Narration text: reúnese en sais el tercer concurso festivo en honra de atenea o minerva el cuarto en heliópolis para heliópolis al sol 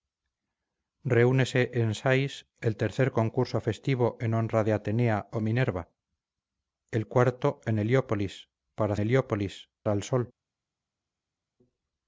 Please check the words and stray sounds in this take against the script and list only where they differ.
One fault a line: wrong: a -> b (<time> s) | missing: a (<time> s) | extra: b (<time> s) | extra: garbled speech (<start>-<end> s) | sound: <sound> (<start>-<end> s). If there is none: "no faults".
no faults